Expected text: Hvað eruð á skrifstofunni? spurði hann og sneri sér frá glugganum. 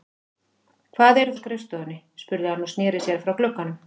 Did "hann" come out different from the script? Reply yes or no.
no